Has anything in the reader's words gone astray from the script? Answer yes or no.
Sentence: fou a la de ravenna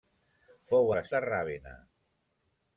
no